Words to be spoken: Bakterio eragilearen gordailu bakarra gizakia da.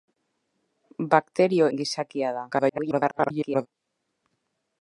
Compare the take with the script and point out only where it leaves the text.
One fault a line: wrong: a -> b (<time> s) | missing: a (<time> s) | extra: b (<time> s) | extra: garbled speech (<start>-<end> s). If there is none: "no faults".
missing: eragilearen gordailu bakarra (1.7 s)
extra: garbled speech (2.5-3.7 s)